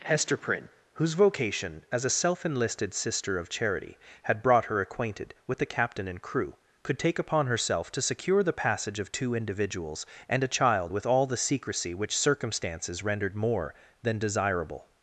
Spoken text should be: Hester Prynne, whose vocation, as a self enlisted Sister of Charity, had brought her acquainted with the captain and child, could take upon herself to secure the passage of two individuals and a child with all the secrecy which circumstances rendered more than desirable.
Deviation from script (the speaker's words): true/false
true